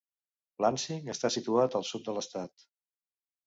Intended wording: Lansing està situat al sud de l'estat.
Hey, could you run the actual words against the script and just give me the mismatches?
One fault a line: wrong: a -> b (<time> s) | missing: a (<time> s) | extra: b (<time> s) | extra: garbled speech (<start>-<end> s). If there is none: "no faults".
no faults